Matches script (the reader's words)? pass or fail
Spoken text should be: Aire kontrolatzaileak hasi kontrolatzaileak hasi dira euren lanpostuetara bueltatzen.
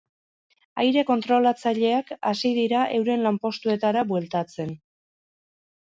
fail